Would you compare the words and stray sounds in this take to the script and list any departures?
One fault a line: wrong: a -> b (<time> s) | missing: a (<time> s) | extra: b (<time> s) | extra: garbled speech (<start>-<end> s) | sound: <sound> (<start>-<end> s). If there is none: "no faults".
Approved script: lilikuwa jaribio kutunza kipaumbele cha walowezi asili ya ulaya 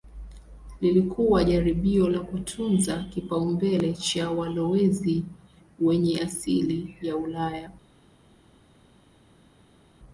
extra: la (2.1 s)
extra: wenye (5.8 s)